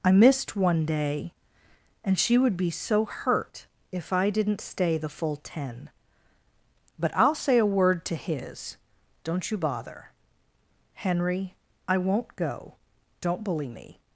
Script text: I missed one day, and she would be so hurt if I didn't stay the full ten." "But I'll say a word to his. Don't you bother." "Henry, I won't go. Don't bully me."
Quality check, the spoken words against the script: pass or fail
pass